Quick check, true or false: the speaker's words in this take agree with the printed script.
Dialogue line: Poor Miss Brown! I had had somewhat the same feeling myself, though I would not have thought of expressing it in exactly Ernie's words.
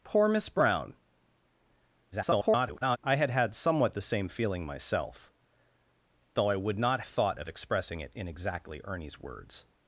false